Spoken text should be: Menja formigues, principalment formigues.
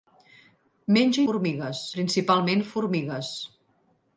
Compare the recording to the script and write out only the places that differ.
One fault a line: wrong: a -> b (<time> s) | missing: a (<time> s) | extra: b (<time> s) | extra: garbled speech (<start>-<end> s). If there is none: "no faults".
no faults